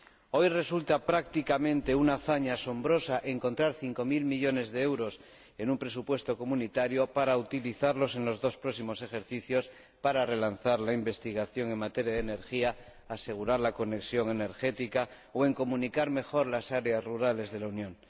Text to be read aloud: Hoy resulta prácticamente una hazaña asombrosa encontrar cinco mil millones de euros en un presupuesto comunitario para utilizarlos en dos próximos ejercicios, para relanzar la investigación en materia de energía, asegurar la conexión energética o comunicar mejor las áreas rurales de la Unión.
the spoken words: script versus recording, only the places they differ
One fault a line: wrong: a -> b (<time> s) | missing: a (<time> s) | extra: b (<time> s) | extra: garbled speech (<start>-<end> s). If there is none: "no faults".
extra: los (8.2 s)